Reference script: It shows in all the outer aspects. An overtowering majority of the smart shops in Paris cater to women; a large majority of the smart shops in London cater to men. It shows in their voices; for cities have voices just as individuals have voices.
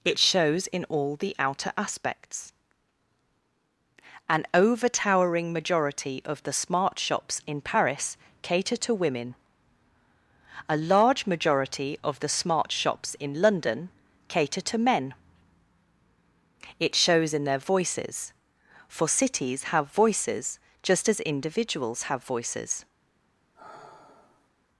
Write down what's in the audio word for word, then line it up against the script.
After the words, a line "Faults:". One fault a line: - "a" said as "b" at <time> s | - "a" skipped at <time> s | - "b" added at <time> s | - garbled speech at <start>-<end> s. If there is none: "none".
It shows in all the outer aspects. An overtowering majority of the smart shops in Paris cater to women; a large majority of the smart shops in London cater to men. It shows in their voices; for cities have voices just as individuals have voices.
Faults:
none